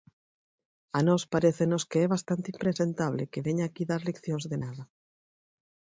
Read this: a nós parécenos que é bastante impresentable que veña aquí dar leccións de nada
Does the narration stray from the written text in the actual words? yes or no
no